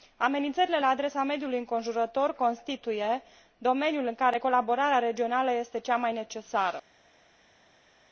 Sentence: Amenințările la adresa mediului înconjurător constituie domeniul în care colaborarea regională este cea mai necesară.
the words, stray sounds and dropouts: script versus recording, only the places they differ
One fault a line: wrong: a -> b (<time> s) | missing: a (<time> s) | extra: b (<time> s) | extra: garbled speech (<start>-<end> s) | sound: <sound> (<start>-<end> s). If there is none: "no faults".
no faults